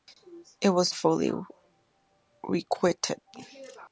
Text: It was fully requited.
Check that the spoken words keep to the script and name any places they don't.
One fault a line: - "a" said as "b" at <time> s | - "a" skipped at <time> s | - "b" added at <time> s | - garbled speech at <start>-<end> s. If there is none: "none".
none